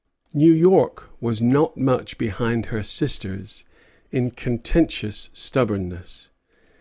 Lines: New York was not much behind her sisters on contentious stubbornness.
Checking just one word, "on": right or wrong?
wrong